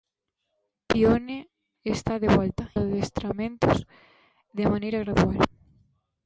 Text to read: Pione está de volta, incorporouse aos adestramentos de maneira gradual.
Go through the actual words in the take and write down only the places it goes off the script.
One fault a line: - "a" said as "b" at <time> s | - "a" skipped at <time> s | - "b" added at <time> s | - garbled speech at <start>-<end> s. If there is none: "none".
- "incorporouse aos" skipped at 2.6 s